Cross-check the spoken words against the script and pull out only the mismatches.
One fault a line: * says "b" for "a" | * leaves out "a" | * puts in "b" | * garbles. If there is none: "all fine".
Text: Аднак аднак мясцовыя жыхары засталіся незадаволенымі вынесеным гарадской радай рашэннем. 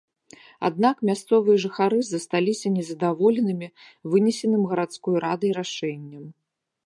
* leaves out "аднак"